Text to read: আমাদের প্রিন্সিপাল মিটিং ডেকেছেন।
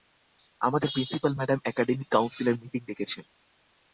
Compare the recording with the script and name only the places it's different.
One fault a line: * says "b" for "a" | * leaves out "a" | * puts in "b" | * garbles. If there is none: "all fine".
* puts in "ম্যাডাম একাডেমিক কাউন্সিলের"